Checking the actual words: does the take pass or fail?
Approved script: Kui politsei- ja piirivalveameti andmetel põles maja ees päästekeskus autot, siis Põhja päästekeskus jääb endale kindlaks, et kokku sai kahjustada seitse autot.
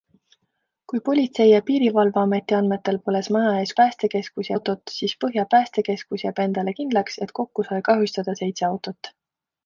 pass